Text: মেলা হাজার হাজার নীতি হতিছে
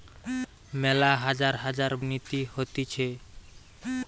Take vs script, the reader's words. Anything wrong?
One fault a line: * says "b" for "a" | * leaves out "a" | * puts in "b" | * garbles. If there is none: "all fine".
all fine